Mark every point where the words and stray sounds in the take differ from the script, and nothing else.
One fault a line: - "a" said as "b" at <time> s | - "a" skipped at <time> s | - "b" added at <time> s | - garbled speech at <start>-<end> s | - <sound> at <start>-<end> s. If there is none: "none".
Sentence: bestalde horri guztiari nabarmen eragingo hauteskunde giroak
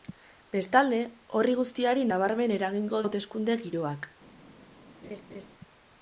- laugh at 5.0-5.5 s